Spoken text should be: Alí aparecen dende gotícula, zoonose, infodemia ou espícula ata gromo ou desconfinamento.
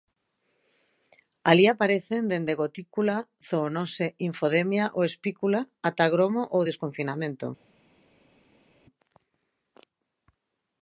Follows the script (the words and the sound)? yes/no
yes